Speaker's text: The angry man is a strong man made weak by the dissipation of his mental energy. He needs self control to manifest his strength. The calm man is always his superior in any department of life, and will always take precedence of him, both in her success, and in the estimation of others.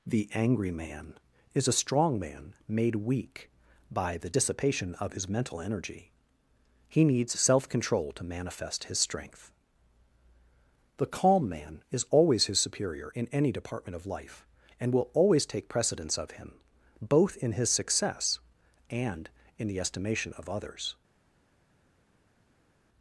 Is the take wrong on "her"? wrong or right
wrong